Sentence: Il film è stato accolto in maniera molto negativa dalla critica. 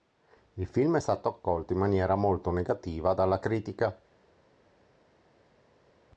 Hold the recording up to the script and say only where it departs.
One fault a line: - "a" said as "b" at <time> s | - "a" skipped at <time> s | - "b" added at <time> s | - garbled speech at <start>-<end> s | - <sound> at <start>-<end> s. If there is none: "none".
none